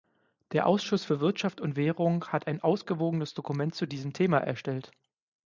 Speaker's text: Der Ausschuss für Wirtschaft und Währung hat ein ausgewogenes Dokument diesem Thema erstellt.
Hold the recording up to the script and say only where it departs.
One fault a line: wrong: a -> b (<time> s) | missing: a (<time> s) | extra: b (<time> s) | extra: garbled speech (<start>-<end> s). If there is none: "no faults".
extra: zu (3.8 s)